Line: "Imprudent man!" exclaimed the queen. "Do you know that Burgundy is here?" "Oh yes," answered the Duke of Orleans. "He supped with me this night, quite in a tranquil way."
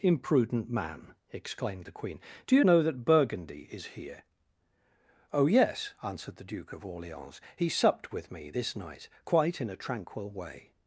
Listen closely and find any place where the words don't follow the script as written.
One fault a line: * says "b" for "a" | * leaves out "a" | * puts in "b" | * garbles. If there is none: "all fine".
all fine